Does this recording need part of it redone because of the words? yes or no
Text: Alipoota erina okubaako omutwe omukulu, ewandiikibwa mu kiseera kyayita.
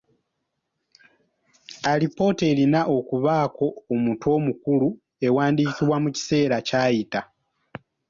no